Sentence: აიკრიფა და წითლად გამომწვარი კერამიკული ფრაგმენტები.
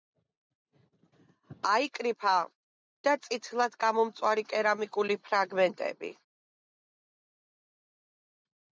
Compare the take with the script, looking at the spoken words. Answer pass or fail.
pass